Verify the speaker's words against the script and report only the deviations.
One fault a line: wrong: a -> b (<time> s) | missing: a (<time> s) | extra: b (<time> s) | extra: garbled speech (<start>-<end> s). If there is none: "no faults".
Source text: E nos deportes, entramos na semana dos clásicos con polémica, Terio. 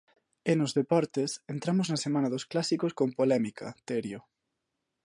no faults